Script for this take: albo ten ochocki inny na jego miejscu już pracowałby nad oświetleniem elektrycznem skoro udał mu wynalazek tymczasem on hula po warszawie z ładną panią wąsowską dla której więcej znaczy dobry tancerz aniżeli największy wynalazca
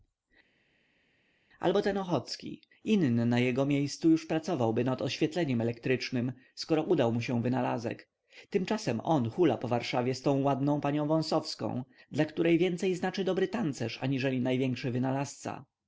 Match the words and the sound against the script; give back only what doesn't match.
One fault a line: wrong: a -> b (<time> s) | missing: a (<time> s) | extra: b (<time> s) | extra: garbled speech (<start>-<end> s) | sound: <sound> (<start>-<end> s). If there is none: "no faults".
extra: się (7.2 s)
extra: tą (10.2 s)